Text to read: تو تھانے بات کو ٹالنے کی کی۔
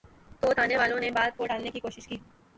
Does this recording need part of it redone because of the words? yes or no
yes